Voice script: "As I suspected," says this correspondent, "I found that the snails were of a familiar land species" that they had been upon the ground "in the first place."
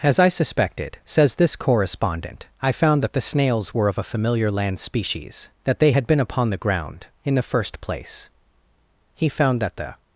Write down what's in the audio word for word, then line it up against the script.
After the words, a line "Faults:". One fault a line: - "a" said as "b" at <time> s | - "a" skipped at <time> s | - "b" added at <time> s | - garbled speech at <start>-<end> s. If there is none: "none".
"As I suspected," says this correspondent, "I found that the snails were of a familiar land species" that they had been upon the ground "in the first place." He found that the
Faults:
- "He found that the" added at 9.1 s